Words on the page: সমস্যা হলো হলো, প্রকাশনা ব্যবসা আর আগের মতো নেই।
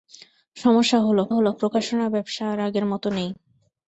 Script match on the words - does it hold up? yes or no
yes